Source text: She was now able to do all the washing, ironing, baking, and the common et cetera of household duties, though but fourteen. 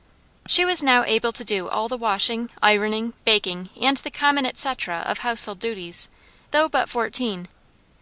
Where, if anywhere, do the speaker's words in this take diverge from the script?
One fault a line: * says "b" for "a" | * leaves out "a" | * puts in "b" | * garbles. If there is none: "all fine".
all fine